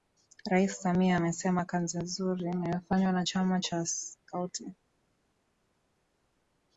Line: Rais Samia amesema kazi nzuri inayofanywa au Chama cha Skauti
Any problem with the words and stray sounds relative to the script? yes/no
yes